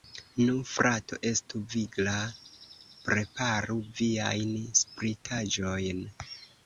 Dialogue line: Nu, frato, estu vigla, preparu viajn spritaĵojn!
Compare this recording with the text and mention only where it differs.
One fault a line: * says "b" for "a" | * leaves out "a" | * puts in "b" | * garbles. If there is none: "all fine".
all fine